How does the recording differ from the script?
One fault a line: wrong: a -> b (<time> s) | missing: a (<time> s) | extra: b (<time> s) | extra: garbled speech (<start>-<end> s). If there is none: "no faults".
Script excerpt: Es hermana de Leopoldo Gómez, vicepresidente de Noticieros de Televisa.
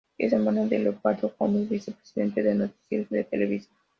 no faults